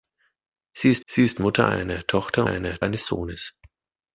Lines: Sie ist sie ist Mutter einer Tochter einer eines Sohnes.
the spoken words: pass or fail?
pass